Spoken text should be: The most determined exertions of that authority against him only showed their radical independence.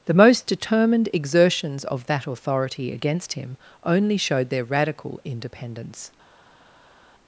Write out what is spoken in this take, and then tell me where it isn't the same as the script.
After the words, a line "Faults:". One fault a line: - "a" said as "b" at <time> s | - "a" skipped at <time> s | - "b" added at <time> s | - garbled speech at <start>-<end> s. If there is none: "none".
The most determined exertions of that authority against him only showed their radical independence.
Faults:
none